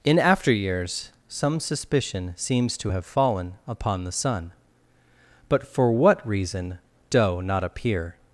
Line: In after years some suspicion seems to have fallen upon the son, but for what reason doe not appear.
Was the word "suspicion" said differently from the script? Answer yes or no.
no